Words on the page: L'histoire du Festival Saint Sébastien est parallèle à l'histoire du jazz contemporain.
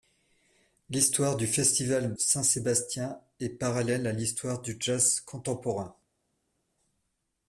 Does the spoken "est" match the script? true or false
true